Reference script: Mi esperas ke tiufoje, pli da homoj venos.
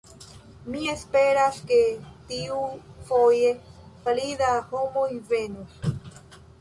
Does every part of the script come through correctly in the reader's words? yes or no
yes